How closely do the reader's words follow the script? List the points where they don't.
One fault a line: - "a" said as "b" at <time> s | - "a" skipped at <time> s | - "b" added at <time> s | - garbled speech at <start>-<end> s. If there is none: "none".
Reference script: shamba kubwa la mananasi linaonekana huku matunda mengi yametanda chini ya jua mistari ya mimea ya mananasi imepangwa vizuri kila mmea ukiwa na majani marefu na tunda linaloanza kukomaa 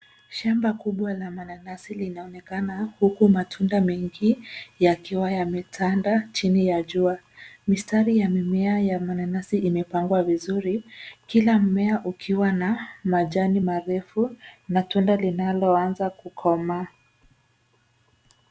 - "yakiwa" added at 4.8 s